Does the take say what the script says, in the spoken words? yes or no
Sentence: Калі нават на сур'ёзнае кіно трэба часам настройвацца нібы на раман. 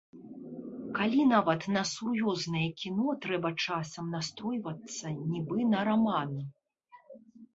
yes